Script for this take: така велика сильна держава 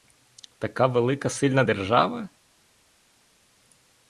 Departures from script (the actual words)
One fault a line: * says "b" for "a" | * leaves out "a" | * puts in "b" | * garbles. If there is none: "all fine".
all fine